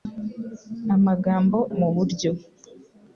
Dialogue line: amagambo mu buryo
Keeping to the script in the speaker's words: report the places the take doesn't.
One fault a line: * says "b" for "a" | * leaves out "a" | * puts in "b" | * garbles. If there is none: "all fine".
all fine